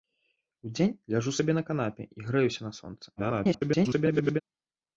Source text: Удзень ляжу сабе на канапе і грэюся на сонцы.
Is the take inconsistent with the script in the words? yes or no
yes